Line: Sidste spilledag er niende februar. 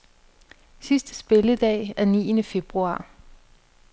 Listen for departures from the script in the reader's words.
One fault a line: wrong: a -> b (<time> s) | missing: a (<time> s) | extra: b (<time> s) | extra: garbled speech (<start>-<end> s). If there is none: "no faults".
no faults